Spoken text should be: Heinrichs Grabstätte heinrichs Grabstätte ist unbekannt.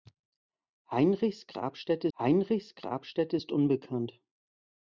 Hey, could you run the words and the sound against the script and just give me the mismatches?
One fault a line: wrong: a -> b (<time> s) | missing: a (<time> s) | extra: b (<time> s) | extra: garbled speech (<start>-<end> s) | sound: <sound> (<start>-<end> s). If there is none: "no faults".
no faults